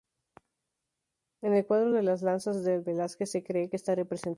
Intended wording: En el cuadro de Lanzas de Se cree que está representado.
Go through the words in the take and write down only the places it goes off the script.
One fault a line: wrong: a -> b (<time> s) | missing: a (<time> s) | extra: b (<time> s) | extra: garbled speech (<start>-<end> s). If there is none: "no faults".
extra: Las (2.0 s)
extra: Velázquez (2.8 s)